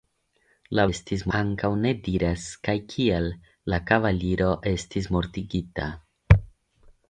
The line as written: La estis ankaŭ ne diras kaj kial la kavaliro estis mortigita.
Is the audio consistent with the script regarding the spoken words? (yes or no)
yes